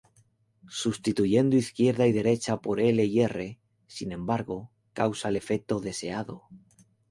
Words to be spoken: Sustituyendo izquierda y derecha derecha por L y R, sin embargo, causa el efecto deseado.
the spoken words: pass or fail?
fail